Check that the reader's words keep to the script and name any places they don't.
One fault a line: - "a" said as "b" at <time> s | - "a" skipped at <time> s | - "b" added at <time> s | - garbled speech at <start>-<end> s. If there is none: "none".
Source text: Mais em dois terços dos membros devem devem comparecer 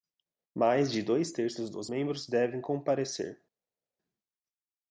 - "em" said as "de" at 0.9 s
- "devem" skipped at 2.6 s